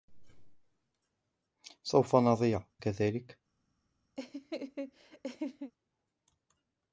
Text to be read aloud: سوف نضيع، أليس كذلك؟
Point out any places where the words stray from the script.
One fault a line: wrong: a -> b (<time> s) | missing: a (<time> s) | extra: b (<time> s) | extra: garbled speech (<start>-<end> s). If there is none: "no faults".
missing: أليس (2.6 s)